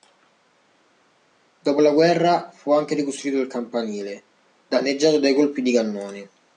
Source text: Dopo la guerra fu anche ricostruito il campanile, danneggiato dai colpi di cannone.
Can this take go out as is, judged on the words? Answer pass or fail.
pass